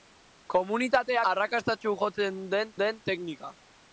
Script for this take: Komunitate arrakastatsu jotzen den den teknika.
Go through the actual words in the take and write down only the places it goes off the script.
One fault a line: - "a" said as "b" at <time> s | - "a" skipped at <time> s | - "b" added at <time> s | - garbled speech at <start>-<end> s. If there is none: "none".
none